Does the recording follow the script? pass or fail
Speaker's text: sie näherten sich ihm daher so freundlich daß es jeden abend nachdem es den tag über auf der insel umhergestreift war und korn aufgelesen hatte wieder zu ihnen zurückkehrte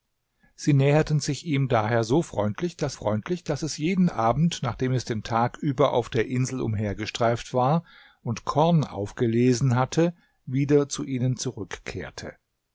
fail